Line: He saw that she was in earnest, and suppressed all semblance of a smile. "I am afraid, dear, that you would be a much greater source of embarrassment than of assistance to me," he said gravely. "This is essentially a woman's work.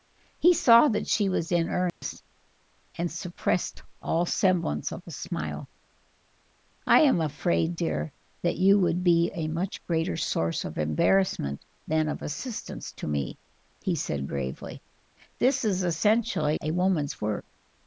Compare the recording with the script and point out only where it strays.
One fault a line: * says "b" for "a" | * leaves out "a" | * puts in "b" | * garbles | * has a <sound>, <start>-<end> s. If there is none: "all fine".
* has a dropout, 1.9-2.0 s